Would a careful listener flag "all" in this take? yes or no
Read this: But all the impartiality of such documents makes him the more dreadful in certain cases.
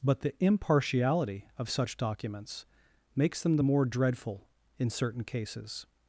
yes